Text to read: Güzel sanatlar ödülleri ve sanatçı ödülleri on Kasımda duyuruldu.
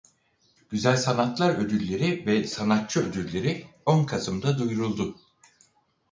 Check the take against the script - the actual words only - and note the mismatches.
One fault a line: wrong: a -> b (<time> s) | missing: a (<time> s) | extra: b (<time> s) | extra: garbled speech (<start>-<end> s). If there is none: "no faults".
no faults